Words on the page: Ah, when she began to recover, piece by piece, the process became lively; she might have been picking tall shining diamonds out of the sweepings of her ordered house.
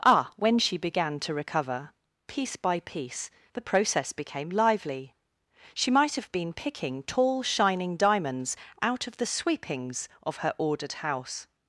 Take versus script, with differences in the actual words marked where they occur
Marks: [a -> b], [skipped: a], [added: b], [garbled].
Ah, when she began to recover, piece by piece, the process became lively; she might have been picking tall shining diamonds out of the sweepings of her ordered house.